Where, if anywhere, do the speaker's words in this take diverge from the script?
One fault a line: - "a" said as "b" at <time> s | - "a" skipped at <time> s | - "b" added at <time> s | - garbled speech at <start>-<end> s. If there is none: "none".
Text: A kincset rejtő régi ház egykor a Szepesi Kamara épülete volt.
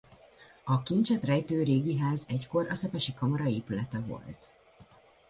none